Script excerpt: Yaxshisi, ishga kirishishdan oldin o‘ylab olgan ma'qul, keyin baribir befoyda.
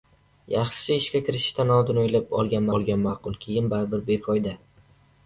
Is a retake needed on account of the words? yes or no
yes